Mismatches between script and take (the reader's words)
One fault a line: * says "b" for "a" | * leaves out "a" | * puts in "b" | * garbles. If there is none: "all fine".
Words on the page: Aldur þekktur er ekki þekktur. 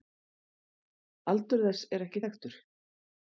* says "þess" for "þekktur"